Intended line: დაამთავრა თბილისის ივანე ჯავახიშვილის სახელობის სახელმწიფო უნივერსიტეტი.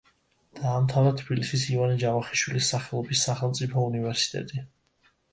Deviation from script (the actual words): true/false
false